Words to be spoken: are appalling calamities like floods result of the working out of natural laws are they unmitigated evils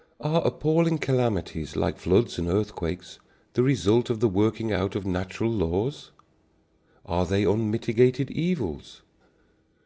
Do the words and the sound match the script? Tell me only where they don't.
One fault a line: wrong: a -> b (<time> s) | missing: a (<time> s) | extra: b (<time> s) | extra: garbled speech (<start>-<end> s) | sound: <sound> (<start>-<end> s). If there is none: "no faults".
extra: and earthquakes the (2.4 s)